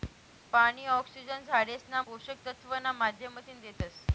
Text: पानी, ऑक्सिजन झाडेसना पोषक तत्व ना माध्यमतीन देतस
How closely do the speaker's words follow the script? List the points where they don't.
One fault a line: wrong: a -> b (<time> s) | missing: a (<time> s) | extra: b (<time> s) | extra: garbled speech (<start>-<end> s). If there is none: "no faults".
no faults